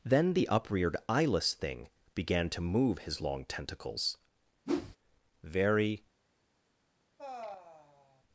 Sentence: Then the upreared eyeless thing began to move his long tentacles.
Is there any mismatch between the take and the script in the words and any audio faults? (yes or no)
yes